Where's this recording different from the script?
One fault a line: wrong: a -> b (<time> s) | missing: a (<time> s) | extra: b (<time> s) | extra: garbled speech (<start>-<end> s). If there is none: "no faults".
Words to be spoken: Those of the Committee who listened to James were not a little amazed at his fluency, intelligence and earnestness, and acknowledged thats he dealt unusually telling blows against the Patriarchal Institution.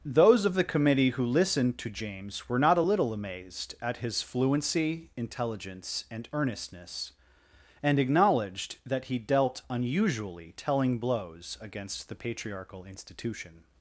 wrong: thats -> that (8.8 s)